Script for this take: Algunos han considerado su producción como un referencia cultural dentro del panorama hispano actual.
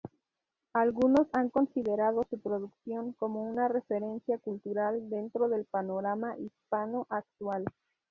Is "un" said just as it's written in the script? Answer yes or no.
no